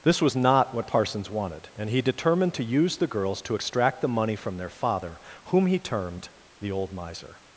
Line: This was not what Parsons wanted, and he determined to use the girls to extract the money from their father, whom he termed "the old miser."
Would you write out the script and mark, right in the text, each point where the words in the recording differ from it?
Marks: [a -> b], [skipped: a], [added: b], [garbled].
This was not what Parsons wanted, and he determined to use the girls to extract the money from their father, whom he termed "the old miser."